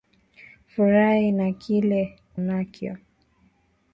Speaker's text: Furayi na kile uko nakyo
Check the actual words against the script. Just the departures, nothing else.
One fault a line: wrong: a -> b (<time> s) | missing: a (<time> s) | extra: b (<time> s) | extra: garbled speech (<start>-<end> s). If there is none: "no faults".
missing: uko (2.0 s)